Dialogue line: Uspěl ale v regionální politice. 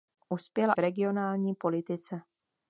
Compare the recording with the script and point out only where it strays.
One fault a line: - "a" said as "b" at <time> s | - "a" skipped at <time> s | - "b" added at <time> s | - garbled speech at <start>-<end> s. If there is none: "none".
- "ale" skipped at 0.7 s